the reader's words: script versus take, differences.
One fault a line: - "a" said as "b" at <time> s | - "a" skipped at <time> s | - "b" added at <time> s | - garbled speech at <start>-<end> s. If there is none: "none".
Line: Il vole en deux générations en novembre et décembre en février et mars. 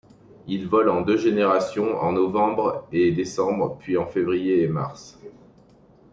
- "puis" added at 3.8 s